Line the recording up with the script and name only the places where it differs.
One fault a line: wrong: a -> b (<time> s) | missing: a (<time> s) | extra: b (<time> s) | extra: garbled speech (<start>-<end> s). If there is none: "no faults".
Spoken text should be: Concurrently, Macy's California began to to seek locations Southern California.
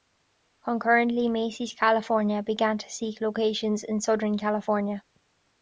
missing: to (2.9 s)
extra: in (3.8 s)